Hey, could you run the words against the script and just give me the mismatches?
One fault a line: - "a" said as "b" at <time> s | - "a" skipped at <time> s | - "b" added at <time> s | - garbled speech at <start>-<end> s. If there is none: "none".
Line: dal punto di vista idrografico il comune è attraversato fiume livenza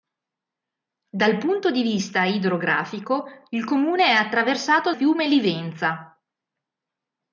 none